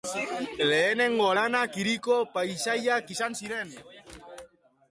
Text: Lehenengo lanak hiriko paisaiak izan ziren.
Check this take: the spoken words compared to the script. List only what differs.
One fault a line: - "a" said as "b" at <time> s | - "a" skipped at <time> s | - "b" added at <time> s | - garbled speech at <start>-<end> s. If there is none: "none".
none